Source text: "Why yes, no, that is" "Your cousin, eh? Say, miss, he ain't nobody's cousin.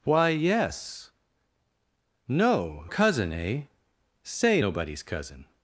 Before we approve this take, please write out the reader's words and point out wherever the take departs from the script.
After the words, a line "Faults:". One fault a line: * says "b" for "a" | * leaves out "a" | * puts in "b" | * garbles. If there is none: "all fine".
"Why yes, no, cousin, eh? Say, nobody's cousin.
Faults:
* leaves out "that is Your"
* leaves out "miss he ain't"